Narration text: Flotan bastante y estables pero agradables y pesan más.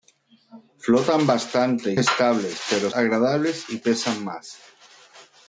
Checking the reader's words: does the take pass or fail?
pass